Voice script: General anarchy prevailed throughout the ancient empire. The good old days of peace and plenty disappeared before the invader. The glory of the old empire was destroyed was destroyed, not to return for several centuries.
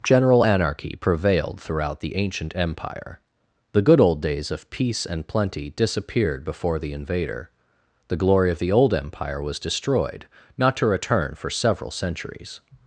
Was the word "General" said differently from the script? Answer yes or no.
no